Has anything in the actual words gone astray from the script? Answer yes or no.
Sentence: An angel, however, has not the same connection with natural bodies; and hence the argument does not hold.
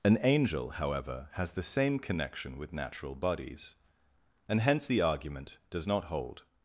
yes